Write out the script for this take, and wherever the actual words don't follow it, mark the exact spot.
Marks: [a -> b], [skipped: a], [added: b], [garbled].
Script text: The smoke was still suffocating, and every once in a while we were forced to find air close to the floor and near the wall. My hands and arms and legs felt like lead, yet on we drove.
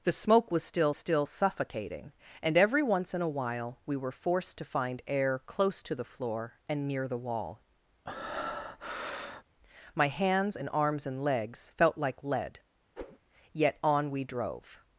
The smoke was still [added: still] suffocating, and every once in a while we were forced to find air close to the floor and near the wall. My hands and arms and legs felt like lead, yet on we drove.